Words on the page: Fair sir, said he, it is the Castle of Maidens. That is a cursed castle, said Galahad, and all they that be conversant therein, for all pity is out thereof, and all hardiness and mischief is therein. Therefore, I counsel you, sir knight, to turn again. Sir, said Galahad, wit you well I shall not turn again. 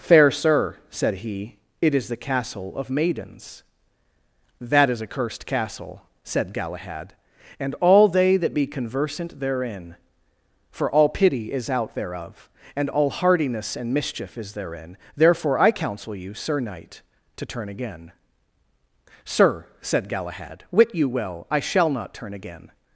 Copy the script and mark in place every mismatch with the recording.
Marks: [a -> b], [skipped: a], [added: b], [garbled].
Fair sir, said he, it is the Castle of Maidens. That is a cursed castle, said Galahad, and all they that be conversant therein, for all pity is out thereof, and all hardiness and mischief is therein. Therefore, I counsel you, sir knight, to turn again. Sir, said Galahad, wit you well I shall not turn again.